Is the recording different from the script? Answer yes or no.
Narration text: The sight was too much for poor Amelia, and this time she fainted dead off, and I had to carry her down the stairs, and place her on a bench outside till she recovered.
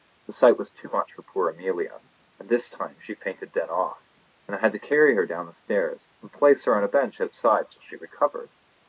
no